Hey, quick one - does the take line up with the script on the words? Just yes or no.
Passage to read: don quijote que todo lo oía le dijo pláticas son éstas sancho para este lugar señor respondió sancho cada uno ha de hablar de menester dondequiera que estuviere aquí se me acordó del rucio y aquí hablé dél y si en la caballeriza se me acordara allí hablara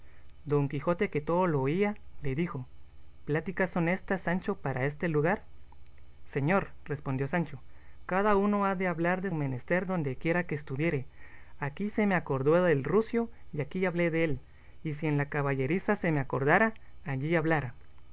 yes